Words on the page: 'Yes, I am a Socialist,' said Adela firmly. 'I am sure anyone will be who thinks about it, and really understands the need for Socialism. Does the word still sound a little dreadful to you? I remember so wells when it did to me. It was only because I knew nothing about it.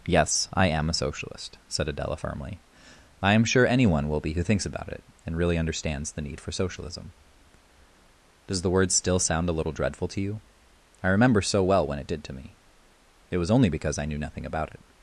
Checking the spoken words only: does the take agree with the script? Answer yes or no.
no